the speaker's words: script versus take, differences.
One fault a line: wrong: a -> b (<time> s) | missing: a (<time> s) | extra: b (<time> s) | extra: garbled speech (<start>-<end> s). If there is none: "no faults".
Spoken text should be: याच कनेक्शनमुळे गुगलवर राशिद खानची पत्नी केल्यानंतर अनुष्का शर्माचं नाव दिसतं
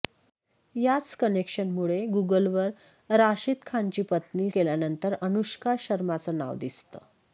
no faults